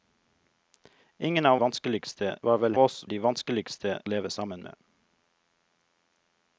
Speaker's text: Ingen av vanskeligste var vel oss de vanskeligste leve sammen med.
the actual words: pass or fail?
pass